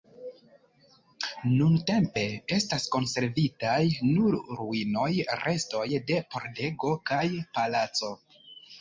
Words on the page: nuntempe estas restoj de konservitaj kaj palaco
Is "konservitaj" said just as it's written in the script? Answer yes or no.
no